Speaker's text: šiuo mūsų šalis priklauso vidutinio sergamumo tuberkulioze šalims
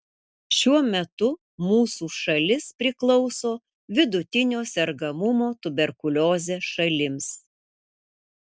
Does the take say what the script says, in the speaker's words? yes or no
no